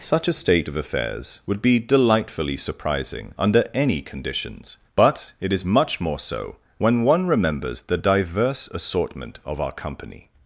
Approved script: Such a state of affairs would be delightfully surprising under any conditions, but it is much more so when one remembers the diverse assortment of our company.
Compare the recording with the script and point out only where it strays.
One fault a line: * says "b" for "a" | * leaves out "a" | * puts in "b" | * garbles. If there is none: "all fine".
all fine